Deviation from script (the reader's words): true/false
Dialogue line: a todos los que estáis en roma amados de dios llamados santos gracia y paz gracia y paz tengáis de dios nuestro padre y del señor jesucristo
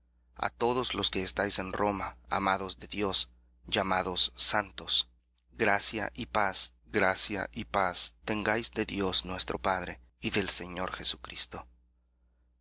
false